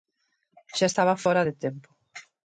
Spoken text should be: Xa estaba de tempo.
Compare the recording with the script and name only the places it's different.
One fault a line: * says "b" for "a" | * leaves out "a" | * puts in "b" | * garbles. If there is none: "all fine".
* puts in "fóra"